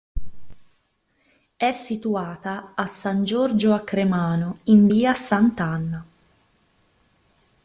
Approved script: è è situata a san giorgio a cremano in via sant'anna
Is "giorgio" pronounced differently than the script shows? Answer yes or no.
no